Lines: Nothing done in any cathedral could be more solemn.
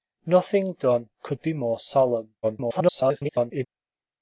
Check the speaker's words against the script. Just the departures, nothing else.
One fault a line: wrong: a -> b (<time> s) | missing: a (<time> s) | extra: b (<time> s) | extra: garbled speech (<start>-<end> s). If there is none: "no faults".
missing: in any cathedral (1.1 s)
extra: garbled speech (2.4-3.7 s)